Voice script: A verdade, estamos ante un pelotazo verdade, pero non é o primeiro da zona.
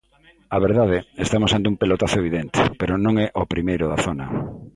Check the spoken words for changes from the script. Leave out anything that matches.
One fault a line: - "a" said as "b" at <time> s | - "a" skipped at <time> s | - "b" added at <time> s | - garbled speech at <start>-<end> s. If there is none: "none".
- "verdade" said as "evidente" at 2.2 s